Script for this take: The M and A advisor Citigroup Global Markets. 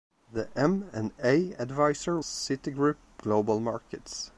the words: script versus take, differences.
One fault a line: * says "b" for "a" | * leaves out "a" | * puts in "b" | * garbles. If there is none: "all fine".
all fine